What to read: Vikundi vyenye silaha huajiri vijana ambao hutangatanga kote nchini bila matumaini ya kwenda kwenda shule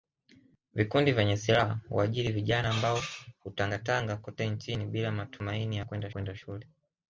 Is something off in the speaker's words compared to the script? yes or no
no